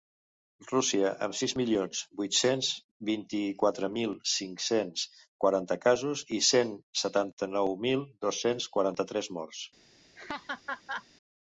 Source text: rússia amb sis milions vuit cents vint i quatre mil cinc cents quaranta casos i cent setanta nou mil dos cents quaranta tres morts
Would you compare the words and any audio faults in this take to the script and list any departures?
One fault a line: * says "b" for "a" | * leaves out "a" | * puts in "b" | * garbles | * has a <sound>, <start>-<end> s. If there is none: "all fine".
* has a laugh, 10.2-11.1 s